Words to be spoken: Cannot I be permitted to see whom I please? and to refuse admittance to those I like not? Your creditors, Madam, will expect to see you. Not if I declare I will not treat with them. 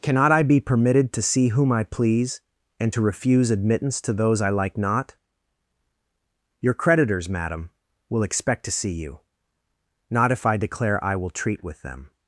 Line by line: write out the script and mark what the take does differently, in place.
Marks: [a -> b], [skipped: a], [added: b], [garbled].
Cannot I be permitted to see whom I please? and to refuse admittance to those I like not? Your creditors, Madam, will expect to see you. Not if I declare I will [skipped: not] treat with them.